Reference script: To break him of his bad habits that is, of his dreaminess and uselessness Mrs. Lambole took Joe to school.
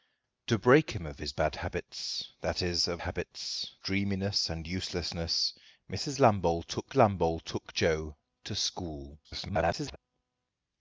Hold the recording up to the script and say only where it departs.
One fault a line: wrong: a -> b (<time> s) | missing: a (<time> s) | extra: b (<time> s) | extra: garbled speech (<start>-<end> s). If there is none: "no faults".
wrong: his -> habits (3.0 s)
extra: lambole took (6.9 s)
extra: garbled speech (9.2-10.0 s)